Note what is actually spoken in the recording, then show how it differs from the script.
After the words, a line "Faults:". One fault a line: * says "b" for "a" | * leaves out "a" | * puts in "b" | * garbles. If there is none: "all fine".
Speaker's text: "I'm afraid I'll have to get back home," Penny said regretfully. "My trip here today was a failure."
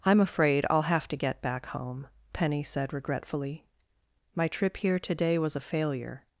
"I'm afraid I'll have to get back home," Penny said regretfully. "My trip here today was a failure."
Faults:
all fine